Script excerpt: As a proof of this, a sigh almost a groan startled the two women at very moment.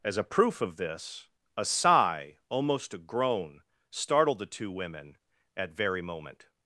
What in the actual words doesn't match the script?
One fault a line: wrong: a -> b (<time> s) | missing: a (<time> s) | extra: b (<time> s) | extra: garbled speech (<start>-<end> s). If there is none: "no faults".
no faults